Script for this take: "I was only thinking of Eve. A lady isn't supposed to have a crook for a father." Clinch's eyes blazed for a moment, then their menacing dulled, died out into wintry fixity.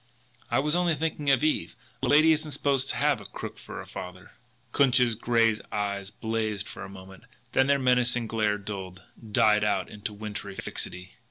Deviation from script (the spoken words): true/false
true